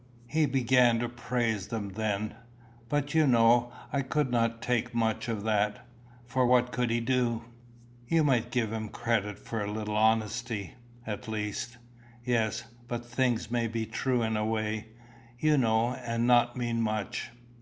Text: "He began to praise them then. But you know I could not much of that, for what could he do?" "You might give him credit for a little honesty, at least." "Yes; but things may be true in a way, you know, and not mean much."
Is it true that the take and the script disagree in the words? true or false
true